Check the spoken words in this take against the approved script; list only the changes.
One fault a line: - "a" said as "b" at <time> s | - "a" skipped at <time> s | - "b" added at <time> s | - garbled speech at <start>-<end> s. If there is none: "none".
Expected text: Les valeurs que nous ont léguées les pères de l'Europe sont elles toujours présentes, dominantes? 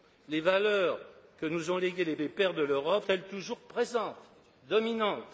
- "les" added at 2.2 s
- "sont" skipped at 3.0 s